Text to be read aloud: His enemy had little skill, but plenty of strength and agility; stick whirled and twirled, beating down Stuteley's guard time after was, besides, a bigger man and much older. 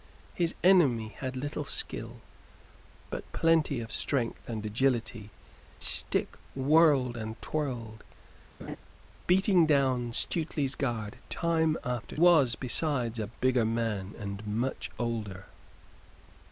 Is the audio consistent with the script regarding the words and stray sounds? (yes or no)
no